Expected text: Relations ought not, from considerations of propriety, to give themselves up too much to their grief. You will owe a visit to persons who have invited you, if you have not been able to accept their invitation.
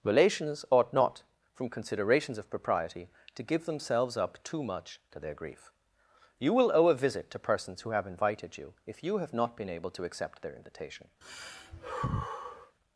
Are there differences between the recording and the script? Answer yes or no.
no